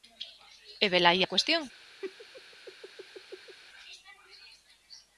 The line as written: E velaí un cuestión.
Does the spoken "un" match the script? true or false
false